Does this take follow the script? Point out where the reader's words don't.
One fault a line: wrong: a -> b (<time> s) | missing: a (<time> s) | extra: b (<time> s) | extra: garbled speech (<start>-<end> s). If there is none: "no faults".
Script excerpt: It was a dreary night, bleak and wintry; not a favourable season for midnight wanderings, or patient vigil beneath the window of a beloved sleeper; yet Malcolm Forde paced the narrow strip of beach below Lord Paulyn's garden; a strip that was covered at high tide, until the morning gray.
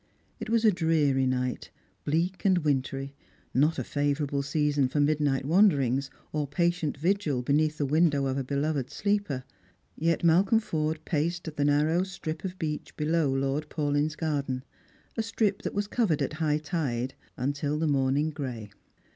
no faults